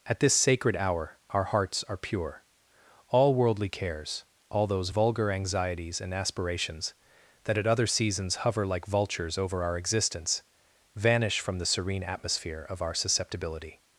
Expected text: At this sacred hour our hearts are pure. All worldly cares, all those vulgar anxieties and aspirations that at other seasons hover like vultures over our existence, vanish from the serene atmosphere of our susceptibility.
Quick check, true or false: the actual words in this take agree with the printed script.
true